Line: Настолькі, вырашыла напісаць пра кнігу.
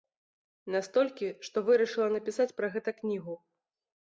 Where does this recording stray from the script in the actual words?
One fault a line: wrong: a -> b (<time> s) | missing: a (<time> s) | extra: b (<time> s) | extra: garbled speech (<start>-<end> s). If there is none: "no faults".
extra: што (1.5 s)
extra: гэта (2.8 s)